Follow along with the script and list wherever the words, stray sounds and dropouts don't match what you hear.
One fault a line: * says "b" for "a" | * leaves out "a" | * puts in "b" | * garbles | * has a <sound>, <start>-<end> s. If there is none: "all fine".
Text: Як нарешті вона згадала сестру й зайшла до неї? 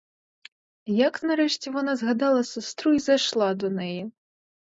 all fine